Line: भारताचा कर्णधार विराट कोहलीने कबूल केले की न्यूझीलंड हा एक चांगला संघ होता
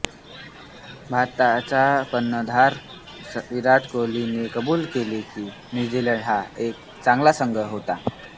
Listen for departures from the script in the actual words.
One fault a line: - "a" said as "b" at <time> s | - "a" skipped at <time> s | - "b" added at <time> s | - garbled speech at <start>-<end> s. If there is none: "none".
none